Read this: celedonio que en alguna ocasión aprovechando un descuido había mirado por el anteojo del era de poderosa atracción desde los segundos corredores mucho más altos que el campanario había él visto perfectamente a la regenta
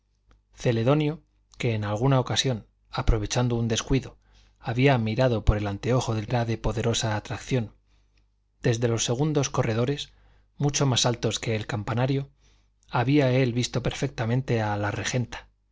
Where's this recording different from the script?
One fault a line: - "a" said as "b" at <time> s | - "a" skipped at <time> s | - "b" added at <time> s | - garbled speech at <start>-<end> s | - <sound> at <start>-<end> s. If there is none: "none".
none